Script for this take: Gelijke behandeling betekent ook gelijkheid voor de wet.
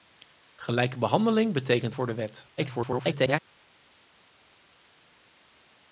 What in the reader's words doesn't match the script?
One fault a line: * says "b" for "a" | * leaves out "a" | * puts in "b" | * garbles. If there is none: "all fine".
* leaves out "ook gelijkheid"
* garbles